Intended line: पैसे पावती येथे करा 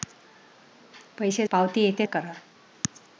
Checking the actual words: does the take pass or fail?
pass